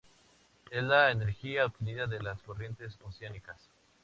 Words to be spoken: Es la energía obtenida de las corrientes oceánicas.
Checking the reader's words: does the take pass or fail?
pass